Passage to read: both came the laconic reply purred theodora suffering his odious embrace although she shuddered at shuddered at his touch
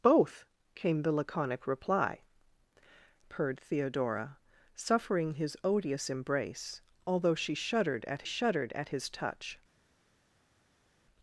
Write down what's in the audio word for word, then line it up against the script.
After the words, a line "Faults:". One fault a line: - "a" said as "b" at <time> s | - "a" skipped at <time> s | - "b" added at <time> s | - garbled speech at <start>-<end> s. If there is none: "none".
both came the laconic reply purred theodora suffering his odious embrace although she shuddered at shuddered at his touch
Faults:
none